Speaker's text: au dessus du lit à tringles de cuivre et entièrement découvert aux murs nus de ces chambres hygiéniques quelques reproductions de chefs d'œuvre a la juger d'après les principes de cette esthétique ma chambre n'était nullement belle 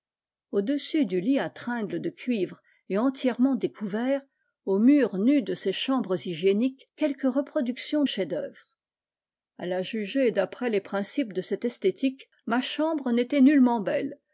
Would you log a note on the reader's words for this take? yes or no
yes